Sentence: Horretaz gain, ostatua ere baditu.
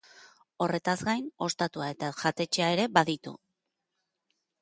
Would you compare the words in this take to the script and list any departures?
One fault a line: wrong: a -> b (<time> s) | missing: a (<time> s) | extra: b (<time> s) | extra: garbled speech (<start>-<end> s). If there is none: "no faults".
extra: eta jatetxea (2.0 s)